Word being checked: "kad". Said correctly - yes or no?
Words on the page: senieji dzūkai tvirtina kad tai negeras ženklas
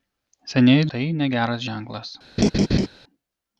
no